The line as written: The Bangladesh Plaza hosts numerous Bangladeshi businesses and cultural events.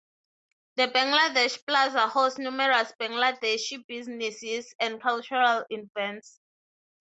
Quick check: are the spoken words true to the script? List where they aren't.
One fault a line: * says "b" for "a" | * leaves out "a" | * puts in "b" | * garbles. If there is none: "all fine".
all fine